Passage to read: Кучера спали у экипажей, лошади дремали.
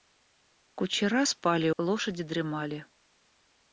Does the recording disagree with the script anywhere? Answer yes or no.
yes